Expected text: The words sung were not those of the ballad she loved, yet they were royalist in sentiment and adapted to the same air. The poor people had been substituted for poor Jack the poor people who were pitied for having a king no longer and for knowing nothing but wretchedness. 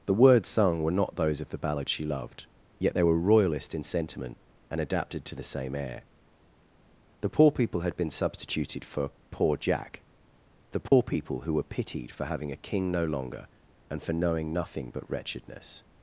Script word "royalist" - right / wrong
right